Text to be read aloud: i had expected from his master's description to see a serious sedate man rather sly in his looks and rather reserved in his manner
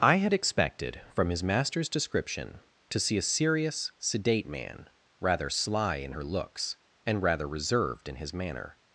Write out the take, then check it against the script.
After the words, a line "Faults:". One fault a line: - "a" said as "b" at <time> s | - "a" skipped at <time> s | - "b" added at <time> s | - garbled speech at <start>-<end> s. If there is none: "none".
i had expected from his master's description to see a serious sedate man rather sly in her looks and rather reserved in his manner
Faults:
- "his" said as "her" at 6.1 s